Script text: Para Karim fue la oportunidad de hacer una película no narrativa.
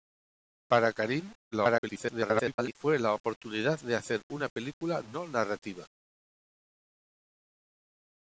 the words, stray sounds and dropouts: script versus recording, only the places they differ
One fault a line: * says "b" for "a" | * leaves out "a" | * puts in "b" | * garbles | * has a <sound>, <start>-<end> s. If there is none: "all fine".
* garbles